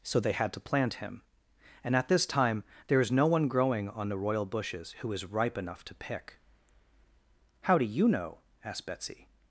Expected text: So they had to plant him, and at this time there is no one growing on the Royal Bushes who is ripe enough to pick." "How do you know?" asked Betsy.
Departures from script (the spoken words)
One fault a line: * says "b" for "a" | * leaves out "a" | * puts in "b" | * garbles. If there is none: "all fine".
all fine